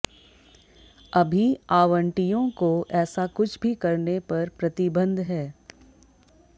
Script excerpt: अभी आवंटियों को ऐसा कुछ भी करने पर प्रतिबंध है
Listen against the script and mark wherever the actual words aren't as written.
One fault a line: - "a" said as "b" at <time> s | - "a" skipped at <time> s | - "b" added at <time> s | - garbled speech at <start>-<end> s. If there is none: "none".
none